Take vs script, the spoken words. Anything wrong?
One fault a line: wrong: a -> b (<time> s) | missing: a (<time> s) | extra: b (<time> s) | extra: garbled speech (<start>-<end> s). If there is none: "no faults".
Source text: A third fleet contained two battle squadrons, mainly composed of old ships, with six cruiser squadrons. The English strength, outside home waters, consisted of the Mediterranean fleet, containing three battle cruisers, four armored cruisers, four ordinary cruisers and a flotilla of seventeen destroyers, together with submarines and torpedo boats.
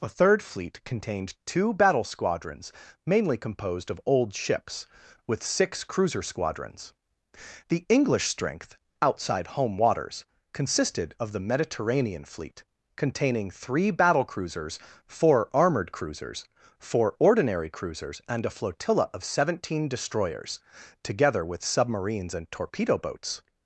no faults